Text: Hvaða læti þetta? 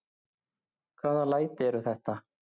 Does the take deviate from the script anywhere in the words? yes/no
yes